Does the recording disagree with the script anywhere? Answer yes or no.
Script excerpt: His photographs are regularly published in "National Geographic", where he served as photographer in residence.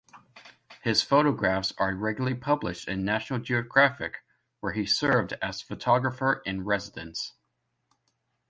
no